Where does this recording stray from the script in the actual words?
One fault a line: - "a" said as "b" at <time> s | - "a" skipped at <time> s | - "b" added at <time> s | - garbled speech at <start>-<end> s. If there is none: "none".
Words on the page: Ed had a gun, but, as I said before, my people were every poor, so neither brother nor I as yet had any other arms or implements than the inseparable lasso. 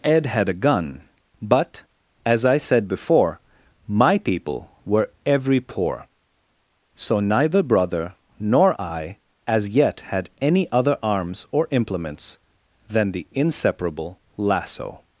none